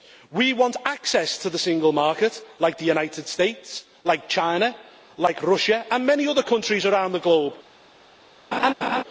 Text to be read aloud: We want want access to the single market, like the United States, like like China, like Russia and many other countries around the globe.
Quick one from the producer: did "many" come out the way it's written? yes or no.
yes